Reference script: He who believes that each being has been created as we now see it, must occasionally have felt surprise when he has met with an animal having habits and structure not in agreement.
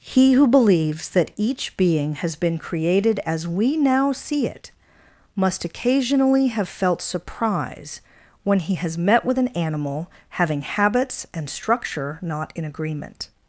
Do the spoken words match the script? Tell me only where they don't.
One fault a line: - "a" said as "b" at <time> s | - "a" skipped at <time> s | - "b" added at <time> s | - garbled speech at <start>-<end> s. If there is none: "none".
none